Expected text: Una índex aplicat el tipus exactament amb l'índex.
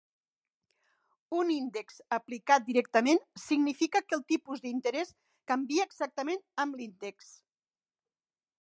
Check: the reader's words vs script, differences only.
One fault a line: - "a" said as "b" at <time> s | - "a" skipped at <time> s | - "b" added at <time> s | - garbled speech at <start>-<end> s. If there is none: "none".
- "Una" said as "Un" at 1.4 s
- "directament significa que" added at 2.7 s
- "d'interès canvia" added at 4.7 s